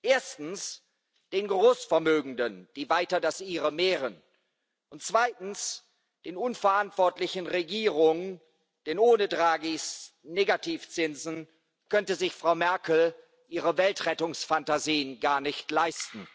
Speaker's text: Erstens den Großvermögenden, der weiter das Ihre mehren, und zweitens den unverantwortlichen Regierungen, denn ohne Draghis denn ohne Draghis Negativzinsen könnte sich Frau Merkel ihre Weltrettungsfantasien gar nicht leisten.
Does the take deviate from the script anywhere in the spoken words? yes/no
yes